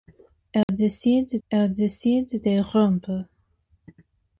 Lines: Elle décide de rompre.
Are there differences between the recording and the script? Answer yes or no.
yes